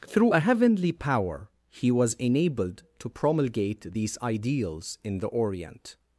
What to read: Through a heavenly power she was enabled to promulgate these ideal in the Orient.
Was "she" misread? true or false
true